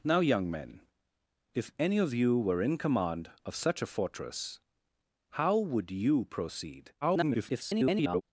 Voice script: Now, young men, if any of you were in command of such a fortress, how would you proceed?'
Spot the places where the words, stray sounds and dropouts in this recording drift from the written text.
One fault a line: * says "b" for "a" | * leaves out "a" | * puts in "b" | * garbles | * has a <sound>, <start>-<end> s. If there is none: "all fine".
* garbles